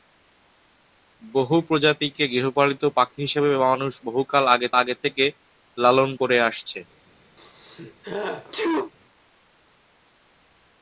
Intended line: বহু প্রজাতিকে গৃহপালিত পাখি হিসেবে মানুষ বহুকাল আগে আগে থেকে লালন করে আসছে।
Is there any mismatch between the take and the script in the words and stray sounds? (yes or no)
yes